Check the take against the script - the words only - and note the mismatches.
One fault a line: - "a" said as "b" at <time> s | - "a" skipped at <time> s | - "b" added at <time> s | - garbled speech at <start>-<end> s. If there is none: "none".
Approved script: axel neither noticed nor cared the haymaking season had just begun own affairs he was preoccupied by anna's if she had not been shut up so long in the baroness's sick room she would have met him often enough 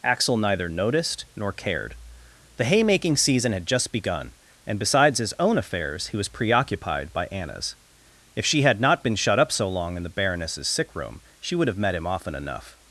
- "and besides his" added at 4.7 s